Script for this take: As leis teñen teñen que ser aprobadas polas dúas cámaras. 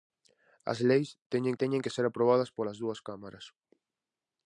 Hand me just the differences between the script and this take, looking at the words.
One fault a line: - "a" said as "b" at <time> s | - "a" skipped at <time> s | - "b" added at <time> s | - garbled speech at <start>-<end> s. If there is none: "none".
none